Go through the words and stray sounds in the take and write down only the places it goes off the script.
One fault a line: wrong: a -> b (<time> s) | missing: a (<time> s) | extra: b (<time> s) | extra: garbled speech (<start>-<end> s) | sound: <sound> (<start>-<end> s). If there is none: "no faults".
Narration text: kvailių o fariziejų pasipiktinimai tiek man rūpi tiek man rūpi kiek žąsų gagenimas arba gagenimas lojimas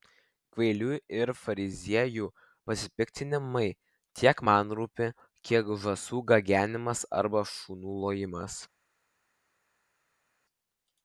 wrong: o -> ir (1.2 s)
missing: tiek man rūpi (5.1 s)
wrong: gagenimas -> šunų (7.5 s)